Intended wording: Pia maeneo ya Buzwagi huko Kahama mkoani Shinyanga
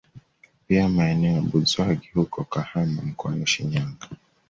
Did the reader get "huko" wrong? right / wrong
right